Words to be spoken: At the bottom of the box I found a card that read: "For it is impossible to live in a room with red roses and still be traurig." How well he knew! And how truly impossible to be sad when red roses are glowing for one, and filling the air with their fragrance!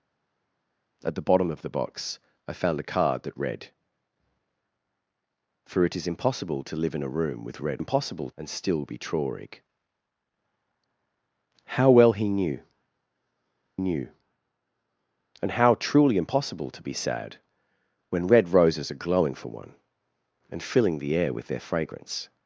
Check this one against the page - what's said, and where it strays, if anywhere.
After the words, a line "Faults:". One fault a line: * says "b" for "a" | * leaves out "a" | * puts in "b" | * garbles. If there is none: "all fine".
At the bottom of the box I found a card that read: "For it is impossible to live in a room with red impossible and still be traurig." How well he knew knew! And how truly impossible to be sad when red roses are glowing for one, and filling the air with their fragrance!
Faults:
* says "impossible" for "roses"
* puts in "knew"